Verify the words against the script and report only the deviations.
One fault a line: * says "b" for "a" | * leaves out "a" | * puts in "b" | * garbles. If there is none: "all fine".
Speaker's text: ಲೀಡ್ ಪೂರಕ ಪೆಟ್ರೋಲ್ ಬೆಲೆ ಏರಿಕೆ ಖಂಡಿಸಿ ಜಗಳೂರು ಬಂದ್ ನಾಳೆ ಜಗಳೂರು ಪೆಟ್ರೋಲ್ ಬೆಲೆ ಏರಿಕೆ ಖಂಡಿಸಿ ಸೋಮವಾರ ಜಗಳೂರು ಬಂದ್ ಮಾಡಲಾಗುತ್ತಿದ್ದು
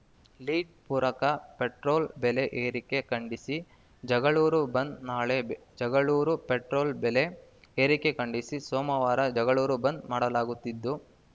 all fine